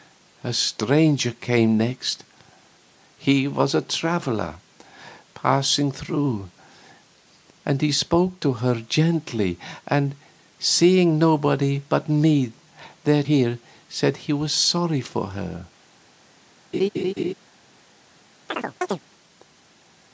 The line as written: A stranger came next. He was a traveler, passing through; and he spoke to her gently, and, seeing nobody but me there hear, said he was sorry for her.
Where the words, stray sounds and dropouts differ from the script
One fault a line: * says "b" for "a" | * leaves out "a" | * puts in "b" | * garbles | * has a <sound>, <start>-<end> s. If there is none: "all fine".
* has a laugh, 16.7-17.3 s
* has a chirp, 18.5-19.0 s